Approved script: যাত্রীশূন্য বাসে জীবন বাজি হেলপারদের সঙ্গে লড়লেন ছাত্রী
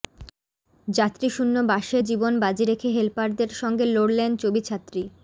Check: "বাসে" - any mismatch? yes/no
no